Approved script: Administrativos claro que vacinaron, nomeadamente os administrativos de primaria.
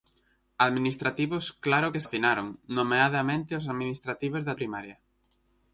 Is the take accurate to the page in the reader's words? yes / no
yes